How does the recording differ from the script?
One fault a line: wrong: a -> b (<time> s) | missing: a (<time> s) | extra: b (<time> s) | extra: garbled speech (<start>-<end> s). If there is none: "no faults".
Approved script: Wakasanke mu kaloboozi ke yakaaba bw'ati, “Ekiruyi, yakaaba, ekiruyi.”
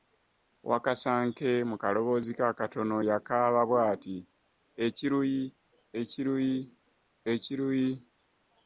extra: akatono (2.5 s)
wrong: yakaaba -> ekiruyi (6.0 s)